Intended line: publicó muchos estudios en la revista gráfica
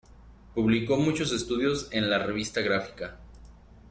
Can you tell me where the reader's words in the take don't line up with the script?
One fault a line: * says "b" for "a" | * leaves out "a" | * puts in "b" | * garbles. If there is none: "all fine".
all fine